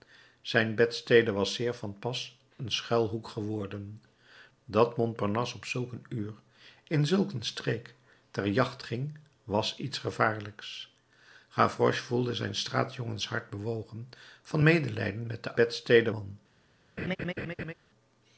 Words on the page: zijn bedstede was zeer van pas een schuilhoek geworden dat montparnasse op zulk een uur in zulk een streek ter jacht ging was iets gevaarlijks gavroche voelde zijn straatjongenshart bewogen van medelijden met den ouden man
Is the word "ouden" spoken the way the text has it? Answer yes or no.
no